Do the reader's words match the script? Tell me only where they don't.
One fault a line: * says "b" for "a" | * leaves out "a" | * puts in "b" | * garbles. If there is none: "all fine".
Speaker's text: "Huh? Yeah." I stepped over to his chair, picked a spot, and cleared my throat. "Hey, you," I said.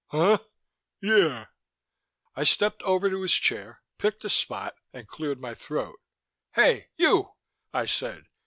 all fine